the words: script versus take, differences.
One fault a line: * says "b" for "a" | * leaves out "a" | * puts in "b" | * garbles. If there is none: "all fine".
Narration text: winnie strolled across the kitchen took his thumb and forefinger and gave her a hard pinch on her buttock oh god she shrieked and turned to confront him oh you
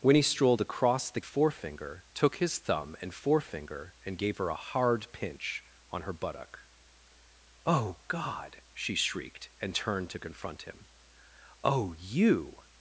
* says "forefinger" for "kitchen"